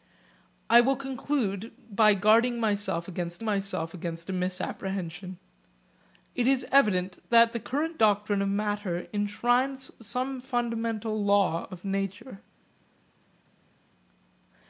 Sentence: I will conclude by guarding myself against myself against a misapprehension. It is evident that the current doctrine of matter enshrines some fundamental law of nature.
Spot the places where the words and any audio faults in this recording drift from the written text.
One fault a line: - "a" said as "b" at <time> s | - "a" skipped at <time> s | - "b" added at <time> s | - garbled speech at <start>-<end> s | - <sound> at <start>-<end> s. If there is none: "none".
none